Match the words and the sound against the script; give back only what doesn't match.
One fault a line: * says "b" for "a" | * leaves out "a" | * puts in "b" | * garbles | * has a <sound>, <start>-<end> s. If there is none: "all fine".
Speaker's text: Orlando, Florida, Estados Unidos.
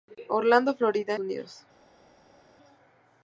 * leaves out "Estados"